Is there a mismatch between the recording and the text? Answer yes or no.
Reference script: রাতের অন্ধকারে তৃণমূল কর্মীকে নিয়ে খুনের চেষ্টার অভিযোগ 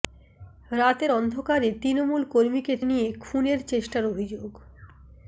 no